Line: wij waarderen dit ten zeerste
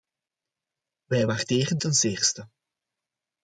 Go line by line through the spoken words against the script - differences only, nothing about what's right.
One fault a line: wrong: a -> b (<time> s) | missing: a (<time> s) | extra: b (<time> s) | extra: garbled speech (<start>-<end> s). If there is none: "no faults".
missing: dit (1.8 s)